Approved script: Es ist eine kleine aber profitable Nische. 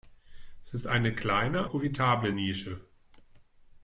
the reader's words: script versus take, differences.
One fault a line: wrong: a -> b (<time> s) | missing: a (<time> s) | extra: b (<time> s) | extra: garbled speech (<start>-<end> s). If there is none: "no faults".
missing: aber (1.7 s)